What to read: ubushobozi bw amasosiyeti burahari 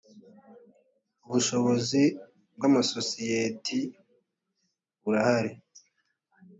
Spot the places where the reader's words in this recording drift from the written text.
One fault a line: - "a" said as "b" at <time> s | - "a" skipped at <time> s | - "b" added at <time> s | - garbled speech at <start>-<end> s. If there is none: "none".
none